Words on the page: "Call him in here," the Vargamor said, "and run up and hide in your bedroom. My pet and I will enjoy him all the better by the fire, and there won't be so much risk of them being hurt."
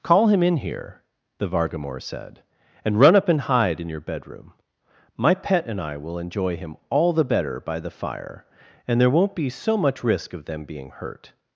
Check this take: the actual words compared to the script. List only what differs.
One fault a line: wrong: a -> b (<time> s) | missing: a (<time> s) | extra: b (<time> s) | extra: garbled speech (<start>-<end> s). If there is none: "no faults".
no faults